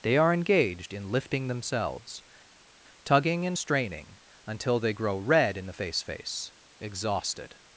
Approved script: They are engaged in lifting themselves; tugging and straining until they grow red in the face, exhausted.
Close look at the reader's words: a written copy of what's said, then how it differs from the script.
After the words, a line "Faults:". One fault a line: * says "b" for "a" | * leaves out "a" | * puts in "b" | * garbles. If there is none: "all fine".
They are engaged in lifting themselves; tugging and straining until they grow red in the face face, exhausted.
Faults:
* puts in "face"